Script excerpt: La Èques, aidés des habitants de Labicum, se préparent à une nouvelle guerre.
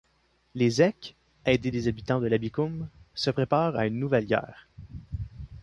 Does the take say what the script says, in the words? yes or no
no